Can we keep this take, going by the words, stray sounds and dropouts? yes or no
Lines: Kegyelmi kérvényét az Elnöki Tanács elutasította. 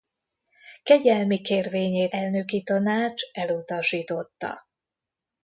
no